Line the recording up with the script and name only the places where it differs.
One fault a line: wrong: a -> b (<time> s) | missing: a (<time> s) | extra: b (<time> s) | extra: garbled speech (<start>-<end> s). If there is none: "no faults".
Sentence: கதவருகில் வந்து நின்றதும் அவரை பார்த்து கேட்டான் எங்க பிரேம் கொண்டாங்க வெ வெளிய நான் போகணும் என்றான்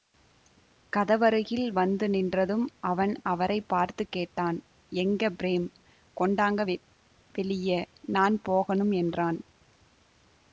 extra: அவன் (2.8 s)